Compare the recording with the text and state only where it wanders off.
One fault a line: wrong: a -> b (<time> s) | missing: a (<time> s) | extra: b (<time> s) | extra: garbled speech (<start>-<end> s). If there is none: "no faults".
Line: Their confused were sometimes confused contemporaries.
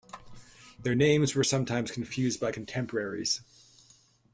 wrong: confused -> names (0.9 s)
extra: by (2.4 s)